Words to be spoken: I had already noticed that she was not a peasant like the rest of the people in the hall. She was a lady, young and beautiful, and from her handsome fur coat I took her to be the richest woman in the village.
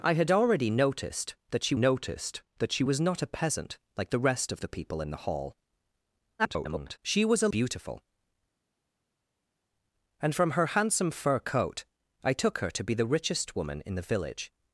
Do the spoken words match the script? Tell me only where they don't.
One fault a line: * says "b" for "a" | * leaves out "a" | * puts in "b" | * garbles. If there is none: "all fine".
* puts in "noticed that she"
* garbles
* leaves out "lady young and"